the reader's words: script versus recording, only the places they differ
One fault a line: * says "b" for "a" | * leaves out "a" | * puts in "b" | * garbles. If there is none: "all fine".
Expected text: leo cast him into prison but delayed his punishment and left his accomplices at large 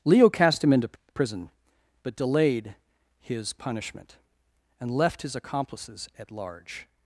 all fine